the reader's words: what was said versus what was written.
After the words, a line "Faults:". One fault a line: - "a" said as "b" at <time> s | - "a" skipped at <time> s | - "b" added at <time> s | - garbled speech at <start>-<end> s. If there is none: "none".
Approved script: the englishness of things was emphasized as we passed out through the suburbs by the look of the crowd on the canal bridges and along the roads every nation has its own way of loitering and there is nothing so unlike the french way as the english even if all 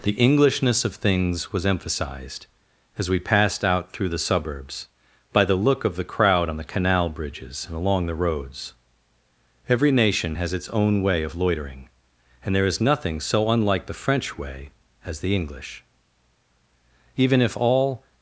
the englishness of things was emphasized as we passed out through the suburbs by the look of the crowd on the canal bridges and along the roads every nation has its own way of loitering and there is nothing so unlike the french way as the english even if all
Faults:
none